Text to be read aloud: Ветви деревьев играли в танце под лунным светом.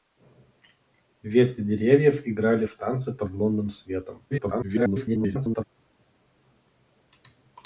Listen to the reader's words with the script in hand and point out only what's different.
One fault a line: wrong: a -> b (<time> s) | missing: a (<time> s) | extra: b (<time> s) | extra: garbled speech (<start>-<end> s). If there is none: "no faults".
extra: garbled speech (4.3-5.6 s)